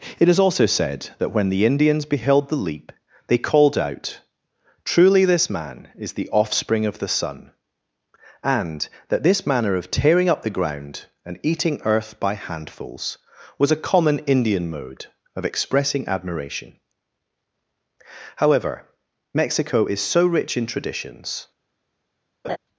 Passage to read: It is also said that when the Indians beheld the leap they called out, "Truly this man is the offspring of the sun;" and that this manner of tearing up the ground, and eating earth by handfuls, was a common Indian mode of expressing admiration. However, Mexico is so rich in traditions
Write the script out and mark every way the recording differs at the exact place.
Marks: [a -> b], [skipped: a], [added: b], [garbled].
It is also said that when the Indians beheld the leap they called out, "Truly this man is the offspring of the sun;" and that this manner of tearing up the ground, and eating earth by handfuls, was a common Indian mode of expressing admiration. However, Mexico is so rich in traditions